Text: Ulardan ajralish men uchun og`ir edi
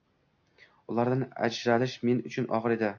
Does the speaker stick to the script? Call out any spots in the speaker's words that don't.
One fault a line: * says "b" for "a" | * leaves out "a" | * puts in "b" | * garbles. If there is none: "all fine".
all fine